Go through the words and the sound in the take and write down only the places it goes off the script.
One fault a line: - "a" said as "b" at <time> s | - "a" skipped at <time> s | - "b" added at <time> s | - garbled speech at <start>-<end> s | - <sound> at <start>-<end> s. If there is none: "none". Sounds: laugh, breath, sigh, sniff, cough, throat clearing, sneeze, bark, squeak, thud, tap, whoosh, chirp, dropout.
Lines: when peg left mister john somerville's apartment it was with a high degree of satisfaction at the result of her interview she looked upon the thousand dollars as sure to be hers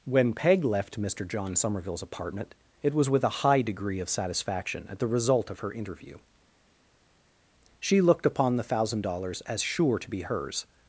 none